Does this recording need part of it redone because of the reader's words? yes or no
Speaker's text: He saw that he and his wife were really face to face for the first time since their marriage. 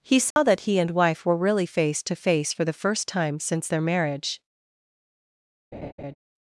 yes